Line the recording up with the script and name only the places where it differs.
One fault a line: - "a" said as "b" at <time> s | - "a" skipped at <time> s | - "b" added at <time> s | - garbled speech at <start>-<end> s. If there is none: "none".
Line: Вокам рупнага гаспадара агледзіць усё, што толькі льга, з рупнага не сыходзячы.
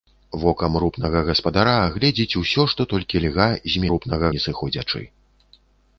none